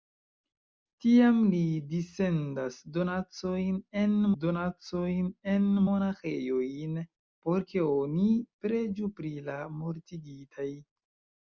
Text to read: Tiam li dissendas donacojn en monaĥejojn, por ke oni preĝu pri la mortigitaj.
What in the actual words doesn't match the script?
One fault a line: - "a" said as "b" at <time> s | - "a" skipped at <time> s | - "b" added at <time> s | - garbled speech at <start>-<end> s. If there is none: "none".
- "donacojn en" added at 4.4 s